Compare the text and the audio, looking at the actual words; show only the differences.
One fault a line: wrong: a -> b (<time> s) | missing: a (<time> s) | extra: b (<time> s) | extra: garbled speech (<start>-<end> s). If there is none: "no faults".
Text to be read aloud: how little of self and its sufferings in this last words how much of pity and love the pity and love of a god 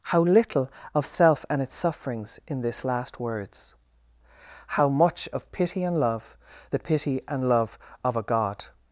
no faults